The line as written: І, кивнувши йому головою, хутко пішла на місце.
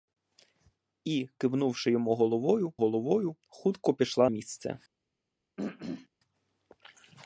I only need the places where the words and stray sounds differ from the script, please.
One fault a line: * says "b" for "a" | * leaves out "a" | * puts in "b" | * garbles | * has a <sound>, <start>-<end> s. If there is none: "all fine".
* puts in "головою"
* leaves out "на"
* has a throat clearing, 5.6-6.1 s